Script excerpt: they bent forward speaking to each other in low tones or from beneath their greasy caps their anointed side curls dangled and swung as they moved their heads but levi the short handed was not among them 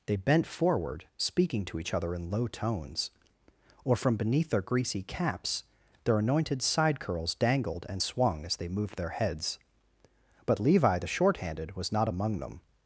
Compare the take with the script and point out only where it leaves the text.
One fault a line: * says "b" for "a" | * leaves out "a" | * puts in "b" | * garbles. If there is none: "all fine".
all fine